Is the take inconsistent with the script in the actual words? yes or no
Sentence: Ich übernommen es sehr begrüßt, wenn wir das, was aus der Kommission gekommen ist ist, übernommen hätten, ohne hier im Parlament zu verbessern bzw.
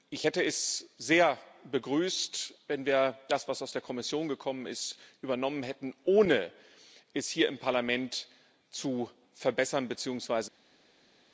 yes